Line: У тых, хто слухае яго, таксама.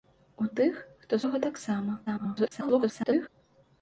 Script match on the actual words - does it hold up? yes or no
no